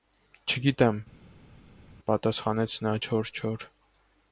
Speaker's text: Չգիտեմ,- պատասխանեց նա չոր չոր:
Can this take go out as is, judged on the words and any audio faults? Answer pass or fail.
pass